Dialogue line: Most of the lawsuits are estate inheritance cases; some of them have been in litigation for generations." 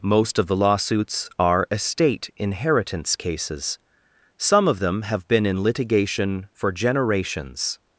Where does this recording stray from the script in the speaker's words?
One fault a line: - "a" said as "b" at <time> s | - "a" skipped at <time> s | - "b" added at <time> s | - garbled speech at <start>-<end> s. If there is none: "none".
none